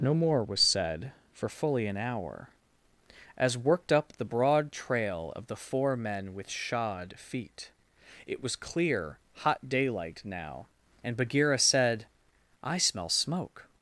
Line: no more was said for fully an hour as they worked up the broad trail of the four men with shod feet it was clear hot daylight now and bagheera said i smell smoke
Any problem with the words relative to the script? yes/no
yes